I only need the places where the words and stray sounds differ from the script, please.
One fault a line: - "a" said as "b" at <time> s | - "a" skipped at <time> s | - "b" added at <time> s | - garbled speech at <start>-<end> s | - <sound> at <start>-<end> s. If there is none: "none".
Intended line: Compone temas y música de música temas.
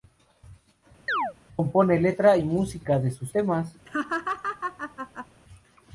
- chirp at 1.1-1.3 s
- "temas" said as "letra" at 2.0 s
- "música" said as "sus" at 3.1 s
- laugh at 3.9-5.3 s